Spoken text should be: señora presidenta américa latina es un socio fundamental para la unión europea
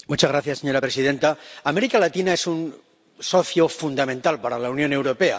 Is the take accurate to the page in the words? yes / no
yes